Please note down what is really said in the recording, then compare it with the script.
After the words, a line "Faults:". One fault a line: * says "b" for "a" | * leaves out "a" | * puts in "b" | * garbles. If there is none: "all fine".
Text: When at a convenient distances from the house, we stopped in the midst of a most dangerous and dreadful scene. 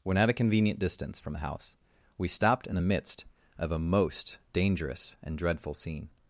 When at a convenient distance from the house, we stopped in the midst of a most dangerous and dreadful scene.
Faults:
* says "distance" for "distances"